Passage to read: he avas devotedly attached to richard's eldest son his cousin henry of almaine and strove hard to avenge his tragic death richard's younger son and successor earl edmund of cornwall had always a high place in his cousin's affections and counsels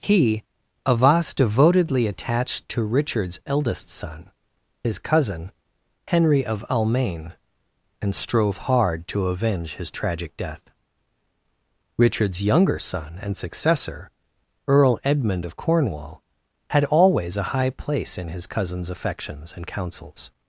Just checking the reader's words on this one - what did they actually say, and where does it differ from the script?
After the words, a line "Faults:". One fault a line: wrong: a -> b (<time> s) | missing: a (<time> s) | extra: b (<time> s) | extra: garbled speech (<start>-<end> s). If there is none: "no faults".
he avas devotedly attached to richard's eldest son his cousin henry of almaine and strove hard to avenge his tragic death richard's younger son and successor earl edmund of cornwall had always a high place in his cousin's affections and counsels
Faults:
no faults